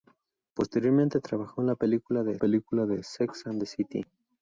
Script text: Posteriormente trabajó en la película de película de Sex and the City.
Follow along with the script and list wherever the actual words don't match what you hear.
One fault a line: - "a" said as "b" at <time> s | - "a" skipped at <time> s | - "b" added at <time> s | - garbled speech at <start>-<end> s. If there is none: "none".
none